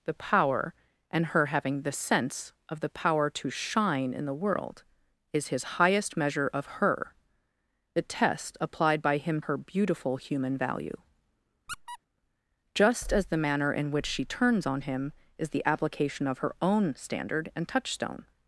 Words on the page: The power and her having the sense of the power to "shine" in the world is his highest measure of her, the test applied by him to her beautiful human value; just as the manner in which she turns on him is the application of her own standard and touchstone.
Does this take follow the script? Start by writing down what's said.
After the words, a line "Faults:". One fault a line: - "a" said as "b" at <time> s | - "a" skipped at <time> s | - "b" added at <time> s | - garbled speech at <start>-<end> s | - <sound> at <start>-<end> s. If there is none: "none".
The power and her having the sense of the power to "shine" in the world is his highest measure of her, the test applied by him her beautiful human value; just as the manner in which she turns on him is the application of her own standard and touchstone.
Faults:
- "to" skipped at 9.4 s
- squeak at 11.7-12.0 s